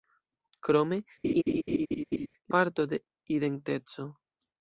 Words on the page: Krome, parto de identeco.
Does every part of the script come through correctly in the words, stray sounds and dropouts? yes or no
no